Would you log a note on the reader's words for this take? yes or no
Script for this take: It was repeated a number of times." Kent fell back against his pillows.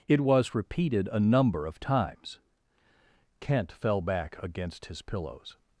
no